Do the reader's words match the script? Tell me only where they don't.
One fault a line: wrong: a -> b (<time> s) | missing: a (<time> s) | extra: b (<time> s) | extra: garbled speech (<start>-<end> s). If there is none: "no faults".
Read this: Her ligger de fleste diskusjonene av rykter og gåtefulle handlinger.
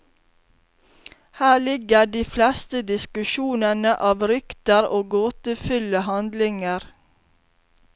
no faults